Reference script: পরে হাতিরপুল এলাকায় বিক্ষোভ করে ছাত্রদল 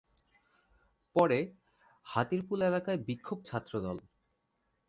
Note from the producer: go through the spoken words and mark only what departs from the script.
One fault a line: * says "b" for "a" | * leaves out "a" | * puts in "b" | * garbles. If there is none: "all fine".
* leaves out "করে"